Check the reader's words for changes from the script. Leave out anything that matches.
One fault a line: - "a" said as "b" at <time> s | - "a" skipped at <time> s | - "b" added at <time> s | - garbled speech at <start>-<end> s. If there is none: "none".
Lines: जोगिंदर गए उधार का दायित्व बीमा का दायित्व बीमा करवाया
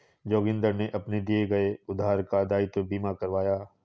- "गए उधार का दायित्व बीमा" said as "ने अपने दिए गए उधार" at 0.7 s